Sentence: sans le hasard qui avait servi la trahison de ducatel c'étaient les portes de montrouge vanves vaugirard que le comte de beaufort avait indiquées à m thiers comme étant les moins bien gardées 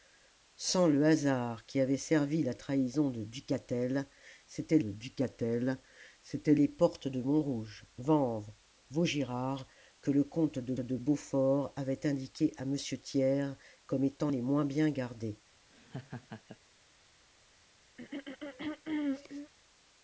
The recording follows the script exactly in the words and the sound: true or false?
false